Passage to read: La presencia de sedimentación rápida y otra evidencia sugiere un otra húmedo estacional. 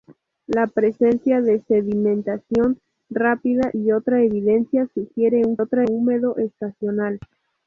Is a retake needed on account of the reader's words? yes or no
no